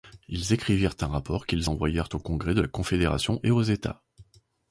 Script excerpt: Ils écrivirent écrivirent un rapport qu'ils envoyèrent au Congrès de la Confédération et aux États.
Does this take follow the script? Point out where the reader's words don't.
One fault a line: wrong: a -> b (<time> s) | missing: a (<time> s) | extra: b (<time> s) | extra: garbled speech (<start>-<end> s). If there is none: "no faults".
missing: écrivirent (0.9 s)